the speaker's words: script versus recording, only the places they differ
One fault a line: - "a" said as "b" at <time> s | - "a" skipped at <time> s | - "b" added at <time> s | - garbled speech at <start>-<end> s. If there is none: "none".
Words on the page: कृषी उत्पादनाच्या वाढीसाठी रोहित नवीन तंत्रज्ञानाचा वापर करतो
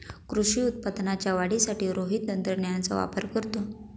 - "नवीन" skipped at 2.3 s